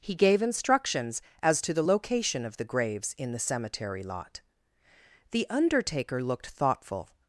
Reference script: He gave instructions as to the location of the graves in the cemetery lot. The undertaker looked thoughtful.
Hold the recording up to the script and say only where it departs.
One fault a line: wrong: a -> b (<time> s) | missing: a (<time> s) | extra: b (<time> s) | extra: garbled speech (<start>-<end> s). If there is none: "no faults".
no faults